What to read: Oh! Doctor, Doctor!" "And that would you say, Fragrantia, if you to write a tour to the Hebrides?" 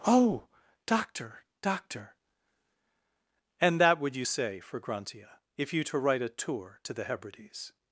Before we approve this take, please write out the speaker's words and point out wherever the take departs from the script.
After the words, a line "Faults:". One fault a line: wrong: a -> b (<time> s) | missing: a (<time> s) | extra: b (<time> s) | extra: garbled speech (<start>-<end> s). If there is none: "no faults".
Oh! Doctor, Doctor!" "And that would you say, Fragrantia, if you to write a tour to the Hebrides?"
Faults:
no faults